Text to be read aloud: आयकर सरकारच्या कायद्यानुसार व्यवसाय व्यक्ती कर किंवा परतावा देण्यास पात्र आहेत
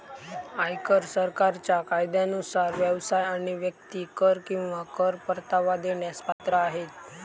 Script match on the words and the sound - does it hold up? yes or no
no